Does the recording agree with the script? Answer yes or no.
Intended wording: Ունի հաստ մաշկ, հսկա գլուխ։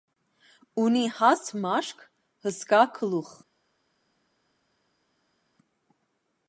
yes